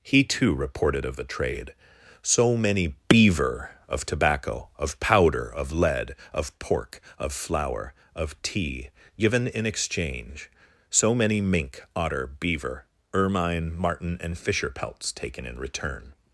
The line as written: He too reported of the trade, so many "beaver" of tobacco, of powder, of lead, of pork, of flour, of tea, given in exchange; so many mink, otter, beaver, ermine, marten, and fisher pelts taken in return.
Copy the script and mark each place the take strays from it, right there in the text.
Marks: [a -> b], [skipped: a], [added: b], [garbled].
He too reported of the trade, so many "beaver" of tobacco, of powder, of lead, of pork, of flour, of tea, given in exchange; so many mink, otter, beaver, ermine, marten, and fisher pelts taken in return.